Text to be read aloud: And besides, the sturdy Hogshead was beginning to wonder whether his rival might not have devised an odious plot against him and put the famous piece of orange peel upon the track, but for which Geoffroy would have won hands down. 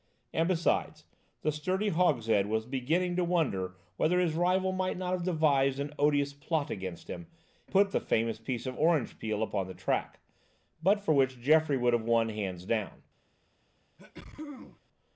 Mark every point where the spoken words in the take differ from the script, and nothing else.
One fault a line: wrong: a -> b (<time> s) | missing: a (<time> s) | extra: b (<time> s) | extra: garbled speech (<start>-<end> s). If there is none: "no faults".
missing: and (7.3 s)